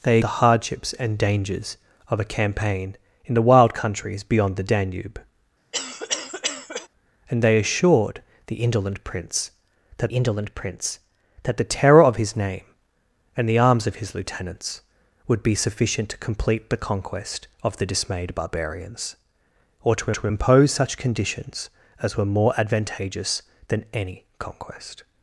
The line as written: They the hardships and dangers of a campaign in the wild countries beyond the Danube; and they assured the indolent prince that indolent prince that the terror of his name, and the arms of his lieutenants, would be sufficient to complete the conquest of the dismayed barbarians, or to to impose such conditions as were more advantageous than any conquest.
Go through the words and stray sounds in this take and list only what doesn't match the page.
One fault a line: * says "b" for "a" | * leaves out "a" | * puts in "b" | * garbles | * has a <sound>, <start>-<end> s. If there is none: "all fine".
* has a cough, 5.7-6.9 s